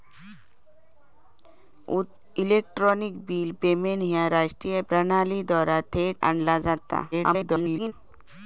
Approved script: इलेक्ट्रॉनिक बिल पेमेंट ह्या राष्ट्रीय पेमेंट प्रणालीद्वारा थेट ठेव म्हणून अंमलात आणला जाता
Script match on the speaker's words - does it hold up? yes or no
no